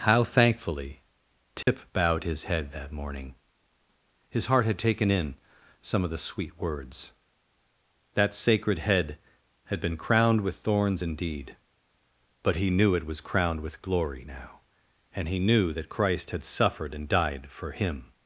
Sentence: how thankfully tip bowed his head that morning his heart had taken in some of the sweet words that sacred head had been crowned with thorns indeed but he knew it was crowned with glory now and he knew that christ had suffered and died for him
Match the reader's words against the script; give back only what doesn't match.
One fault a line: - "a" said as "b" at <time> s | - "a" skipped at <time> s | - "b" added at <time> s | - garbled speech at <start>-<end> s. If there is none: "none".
none